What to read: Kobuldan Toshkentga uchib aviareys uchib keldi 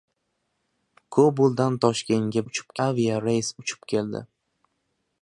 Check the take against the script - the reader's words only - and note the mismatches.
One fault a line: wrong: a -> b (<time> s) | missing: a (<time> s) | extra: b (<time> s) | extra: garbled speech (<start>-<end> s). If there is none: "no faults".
no faults